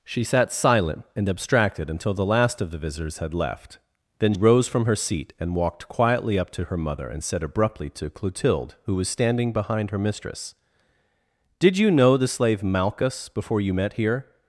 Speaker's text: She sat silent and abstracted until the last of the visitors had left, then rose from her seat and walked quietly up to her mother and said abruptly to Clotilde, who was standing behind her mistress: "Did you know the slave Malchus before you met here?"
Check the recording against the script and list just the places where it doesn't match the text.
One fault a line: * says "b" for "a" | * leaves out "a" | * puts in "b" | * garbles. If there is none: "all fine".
all fine